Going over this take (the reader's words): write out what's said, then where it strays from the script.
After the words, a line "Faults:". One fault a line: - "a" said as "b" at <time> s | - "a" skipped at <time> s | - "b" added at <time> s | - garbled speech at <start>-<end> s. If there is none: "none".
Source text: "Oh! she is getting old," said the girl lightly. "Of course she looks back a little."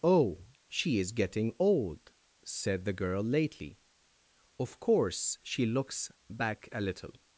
"Oh! she is getting old," said the girl lately. "Of course she looks back a little."
Faults:
- "lightly" said as "lately" at 3.2 s